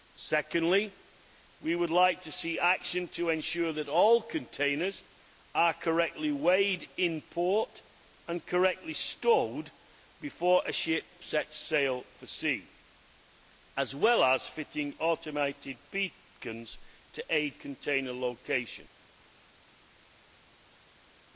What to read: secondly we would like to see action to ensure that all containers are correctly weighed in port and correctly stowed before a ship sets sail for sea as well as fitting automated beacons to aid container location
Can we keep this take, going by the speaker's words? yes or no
yes